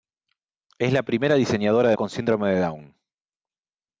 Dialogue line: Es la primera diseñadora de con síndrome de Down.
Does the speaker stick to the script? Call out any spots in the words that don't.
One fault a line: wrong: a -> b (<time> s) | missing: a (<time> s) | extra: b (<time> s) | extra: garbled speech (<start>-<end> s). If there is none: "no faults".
no faults